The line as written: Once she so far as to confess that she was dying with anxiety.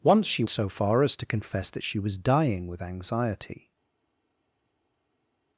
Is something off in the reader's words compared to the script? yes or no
no